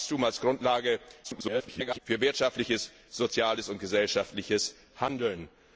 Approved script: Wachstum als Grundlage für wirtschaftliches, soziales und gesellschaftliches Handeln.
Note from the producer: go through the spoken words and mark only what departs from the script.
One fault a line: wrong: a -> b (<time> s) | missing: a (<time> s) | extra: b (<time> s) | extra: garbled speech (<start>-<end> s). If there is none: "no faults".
extra: garbled speech (1.2-2.0 s)